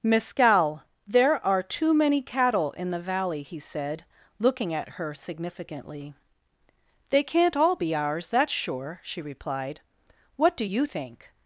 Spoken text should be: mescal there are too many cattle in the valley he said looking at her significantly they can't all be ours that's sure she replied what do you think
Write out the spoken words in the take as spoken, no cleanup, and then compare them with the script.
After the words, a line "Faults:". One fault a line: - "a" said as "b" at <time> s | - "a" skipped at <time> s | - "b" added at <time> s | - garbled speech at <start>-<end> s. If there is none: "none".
mescal there are too many cattle in the valley he said looking at her significantly they can't all be ours that's sure she replied what do you think
Faults:
none